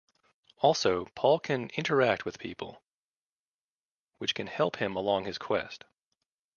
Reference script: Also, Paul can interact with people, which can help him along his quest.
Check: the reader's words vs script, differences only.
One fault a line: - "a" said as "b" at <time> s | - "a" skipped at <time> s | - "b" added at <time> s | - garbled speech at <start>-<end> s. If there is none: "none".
none